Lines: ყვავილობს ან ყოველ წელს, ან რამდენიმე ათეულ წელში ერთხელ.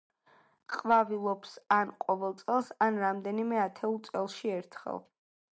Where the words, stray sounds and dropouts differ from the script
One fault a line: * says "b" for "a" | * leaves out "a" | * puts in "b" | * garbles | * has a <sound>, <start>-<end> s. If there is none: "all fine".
all fine